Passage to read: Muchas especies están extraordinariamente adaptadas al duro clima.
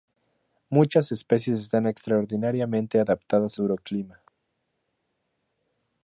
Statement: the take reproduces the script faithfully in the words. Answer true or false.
false